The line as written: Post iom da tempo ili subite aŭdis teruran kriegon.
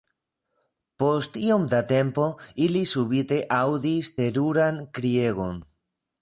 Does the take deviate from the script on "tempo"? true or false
false